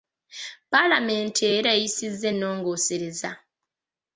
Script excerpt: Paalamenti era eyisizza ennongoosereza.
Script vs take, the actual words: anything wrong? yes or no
no